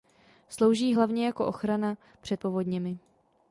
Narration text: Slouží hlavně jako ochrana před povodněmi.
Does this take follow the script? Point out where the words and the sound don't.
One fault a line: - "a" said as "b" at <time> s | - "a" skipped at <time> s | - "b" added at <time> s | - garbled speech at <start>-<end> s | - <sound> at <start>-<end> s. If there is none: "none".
none